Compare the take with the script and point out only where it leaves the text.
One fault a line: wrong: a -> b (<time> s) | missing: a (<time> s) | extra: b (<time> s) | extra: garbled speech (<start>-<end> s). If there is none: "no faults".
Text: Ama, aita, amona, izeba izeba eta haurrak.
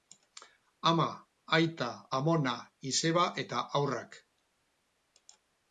missing: izeba (3.3 s)